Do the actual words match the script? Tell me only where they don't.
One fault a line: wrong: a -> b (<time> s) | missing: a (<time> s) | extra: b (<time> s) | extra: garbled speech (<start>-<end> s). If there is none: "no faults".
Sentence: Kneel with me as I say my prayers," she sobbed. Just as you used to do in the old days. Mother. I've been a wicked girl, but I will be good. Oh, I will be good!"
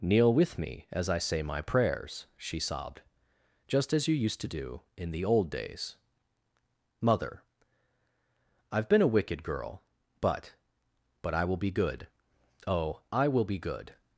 extra: but (11.2 s)